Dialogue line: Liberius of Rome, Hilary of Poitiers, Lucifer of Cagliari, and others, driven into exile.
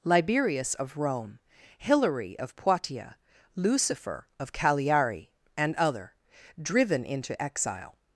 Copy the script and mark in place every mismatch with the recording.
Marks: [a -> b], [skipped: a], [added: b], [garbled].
Liberius of Rome, Hilary of Poitiers, Lucifer of Cagliari, and [others, -> other] driven into exile.